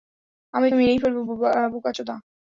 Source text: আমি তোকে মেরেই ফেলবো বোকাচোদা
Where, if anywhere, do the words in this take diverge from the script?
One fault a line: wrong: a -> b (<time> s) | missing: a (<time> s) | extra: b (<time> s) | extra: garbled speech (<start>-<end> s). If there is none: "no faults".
missing: তোকে (0.7 s)